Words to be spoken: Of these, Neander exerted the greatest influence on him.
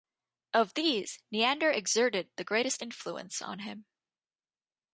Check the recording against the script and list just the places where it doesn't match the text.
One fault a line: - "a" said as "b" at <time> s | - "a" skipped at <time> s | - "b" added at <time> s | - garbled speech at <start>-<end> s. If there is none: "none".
none